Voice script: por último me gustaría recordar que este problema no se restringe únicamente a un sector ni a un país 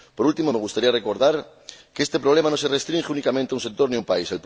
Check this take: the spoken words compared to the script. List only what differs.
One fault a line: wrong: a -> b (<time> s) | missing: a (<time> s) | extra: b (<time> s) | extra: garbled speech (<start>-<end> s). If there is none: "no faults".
no faults